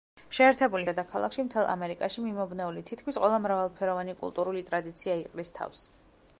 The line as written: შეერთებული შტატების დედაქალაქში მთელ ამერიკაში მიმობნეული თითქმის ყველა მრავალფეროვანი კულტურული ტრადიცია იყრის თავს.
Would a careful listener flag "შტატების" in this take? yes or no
yes